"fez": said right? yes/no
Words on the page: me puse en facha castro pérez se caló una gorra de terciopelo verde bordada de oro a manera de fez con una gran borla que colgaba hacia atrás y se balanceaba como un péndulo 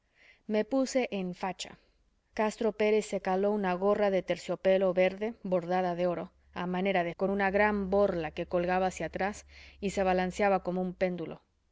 no